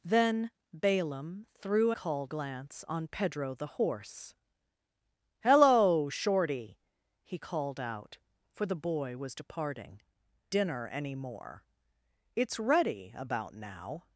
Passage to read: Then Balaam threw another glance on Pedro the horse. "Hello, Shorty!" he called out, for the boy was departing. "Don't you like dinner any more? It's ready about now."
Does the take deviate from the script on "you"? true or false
true